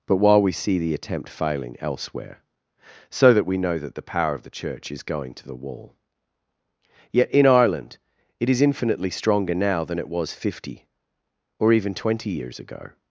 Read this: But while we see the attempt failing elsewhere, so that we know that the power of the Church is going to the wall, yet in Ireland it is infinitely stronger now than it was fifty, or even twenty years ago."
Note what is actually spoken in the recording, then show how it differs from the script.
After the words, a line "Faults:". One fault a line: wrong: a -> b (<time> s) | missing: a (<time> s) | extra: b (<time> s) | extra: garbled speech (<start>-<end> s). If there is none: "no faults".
But while we see the attempt failing elsewhere, so that we know that the power of the Church is going to the wall, yet in Ireland it is infinitely stronger now than it was fifty, or even twenty years ago."
Faults:
no faults